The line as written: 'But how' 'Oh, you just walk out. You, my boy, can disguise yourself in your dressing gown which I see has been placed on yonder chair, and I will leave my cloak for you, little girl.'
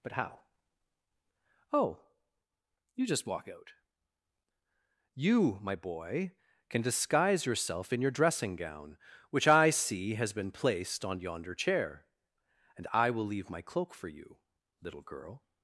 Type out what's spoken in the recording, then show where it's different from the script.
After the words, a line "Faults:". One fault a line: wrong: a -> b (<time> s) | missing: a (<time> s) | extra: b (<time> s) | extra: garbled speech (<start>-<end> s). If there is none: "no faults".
'But how' 'Oh, you just walk out. You, my boy, can disguise yourself in your dressing gown which I see has been placed on yonder chair, and I will leave my cloak for you, little girl.'
Faults:
no faults